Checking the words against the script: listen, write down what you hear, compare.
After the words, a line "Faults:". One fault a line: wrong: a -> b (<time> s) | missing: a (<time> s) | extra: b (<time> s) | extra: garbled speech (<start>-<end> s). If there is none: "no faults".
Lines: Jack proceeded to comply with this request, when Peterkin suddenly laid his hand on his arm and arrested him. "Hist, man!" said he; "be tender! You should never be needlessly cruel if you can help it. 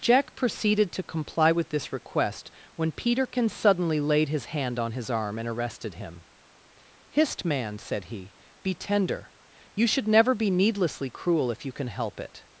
Jack proceeded to comply with this request, when Peterkin suddenly laid his hand on his arm and arrested him. "Hist, man!" said he; "be tender! You should never be needlessly cruel if you can help it.
Faults:
no faults